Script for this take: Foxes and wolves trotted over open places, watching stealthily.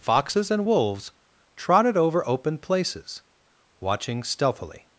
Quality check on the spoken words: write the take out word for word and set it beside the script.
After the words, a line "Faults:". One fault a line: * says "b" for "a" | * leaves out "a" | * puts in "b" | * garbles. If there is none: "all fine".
Foxes and wolves trotted over open places, watching stealthily.
Faults:
all fine